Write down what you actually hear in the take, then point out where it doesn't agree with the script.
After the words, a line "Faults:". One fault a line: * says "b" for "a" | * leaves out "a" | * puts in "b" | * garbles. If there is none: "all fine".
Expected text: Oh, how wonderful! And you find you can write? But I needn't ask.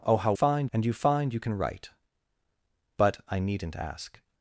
Oh, how find! And you find you can write? But I needn't ask.
Faults:
* says "find" for "wonderful"